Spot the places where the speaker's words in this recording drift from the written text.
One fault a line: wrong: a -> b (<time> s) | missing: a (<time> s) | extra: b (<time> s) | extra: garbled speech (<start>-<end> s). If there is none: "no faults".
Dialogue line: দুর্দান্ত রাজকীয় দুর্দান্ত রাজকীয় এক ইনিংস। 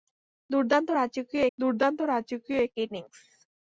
no faults